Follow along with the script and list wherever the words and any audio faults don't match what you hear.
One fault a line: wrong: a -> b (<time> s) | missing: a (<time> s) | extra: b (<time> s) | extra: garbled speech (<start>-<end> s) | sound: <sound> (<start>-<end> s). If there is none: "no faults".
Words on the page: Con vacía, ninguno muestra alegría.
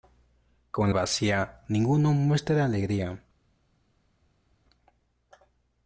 no faults